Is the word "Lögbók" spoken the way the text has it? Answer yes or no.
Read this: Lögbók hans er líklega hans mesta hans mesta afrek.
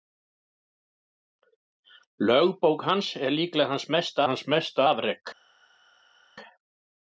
yes